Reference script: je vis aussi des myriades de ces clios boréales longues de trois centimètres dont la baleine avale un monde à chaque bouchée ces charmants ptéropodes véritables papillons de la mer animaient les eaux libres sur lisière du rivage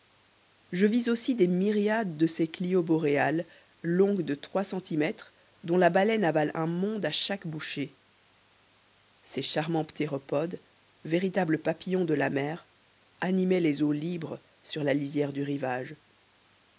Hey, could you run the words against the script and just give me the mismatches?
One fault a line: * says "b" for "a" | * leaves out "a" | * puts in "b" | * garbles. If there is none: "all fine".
* puts in "la"